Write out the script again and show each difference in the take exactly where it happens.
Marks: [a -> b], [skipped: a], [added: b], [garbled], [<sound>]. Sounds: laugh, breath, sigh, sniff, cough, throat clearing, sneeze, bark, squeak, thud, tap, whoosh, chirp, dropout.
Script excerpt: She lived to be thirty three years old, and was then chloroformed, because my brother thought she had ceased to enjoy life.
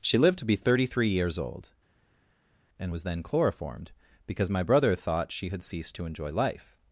She lived to be thirty three years old, and was then chloroformed, because my brother thought she had ceased to enjoy life.